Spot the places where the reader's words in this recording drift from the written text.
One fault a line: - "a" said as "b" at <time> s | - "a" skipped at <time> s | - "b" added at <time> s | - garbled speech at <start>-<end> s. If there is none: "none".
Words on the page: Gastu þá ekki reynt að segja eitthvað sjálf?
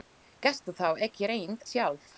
- "að segja eitthvað" skipped at 1.6 s